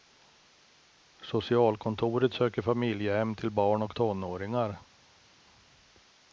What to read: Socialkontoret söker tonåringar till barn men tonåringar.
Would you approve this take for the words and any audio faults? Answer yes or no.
no